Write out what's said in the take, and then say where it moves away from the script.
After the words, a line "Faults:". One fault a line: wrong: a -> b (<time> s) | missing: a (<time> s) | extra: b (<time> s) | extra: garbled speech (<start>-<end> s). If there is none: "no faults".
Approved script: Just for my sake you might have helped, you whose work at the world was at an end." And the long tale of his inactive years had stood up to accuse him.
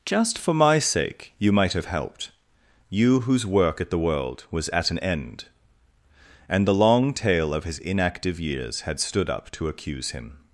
Just for my sake you might have helped, you whose work at the world was at an end." And the long tale of his inactive years had stood up to accuse him.
Faults:
no faults